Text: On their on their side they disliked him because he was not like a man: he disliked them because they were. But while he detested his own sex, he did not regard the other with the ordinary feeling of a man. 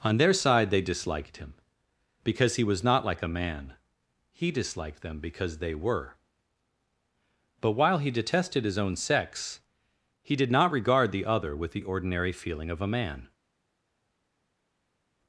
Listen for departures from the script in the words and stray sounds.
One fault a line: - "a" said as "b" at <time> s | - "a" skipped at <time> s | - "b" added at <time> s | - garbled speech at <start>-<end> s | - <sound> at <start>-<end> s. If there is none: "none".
- "on their" skipped at 0.3 s